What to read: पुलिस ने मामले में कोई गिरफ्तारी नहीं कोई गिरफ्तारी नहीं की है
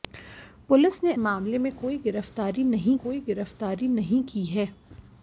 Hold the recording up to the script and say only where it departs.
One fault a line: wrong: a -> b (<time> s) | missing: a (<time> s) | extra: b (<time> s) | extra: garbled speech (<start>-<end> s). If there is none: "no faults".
no faults